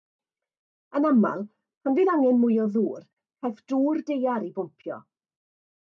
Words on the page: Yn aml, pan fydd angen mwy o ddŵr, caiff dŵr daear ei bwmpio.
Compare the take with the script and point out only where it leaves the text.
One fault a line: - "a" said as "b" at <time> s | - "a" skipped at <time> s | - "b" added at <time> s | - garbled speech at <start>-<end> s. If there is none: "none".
none